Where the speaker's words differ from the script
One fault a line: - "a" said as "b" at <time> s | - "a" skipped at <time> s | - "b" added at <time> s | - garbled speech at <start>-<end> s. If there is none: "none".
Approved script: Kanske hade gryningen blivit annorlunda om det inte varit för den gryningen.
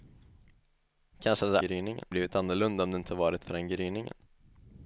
none